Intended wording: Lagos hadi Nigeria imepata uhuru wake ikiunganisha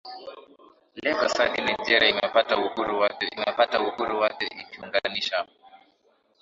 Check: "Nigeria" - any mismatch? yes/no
no